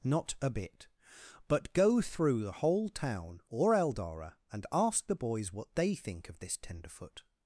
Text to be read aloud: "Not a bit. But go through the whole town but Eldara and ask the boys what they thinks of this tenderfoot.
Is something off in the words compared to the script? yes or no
yes